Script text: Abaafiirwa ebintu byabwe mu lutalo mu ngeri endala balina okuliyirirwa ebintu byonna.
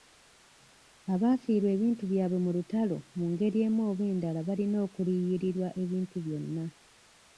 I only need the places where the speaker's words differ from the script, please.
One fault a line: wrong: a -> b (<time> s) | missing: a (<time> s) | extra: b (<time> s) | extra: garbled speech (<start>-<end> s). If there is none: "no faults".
extra: emu oba (3.7 s)